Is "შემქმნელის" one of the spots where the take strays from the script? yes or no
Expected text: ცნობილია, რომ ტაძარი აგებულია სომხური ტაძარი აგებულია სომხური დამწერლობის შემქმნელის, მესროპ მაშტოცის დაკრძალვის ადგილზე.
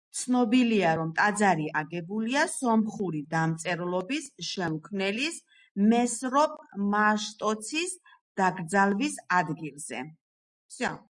no